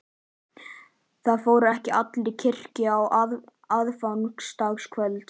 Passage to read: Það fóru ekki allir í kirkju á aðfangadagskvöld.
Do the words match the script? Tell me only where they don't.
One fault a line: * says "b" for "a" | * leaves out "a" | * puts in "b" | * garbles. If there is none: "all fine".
all fine